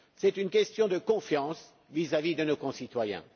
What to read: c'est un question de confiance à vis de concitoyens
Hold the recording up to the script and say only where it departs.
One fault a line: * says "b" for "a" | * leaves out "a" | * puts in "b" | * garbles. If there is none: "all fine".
* says "une" for "un"
* puts in "vis"
* puts in "nos"